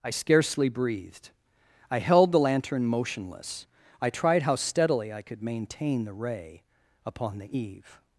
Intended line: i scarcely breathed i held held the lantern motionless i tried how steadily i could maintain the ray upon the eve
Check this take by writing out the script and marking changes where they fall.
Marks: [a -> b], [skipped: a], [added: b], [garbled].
i scarcely breathed i held [skipped: held] the lantern motionless i tried how steadily i could maintain the ray upon the eve